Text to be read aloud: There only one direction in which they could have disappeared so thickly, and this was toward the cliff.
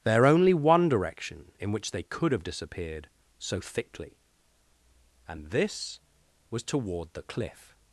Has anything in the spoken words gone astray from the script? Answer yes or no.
no